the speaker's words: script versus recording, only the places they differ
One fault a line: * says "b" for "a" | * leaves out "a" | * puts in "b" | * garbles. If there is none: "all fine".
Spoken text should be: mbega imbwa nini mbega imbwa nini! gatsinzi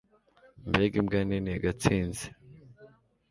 * leaves out "mbega imbwa nini"